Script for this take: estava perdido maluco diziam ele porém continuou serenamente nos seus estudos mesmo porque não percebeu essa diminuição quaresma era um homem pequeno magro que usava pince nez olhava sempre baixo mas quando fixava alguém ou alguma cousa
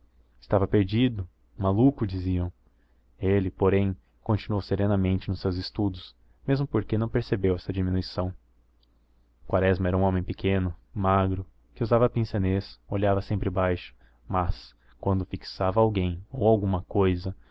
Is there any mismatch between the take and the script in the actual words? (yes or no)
no